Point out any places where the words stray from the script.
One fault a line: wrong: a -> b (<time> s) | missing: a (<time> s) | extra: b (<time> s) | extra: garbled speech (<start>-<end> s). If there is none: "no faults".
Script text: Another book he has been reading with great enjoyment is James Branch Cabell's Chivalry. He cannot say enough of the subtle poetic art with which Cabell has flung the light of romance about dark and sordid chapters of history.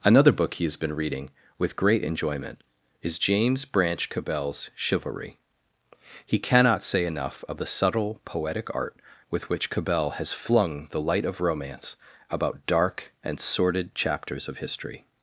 no faults